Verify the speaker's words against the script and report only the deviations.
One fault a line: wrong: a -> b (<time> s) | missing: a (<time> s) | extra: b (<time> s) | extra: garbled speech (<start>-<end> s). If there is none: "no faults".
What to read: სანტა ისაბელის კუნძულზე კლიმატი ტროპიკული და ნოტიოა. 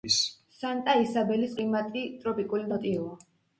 missing: კუნძულზე (1.6 s)
missing: და (2.7 s)